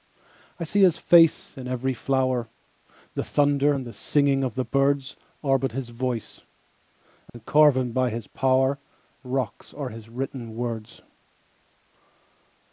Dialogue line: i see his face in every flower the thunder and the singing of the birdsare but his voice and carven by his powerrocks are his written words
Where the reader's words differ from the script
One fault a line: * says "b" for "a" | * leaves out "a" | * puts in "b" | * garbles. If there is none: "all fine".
all fine